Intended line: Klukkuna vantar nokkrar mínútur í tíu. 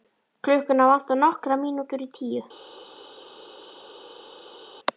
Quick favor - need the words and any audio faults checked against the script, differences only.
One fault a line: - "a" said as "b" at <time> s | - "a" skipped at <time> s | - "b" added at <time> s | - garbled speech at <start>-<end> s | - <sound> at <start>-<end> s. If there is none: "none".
none